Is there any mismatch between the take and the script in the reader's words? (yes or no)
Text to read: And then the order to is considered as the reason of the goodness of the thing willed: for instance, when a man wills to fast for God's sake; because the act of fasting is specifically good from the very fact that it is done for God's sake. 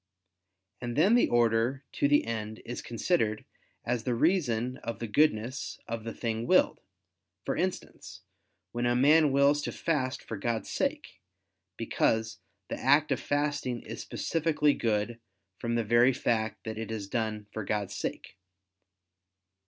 yes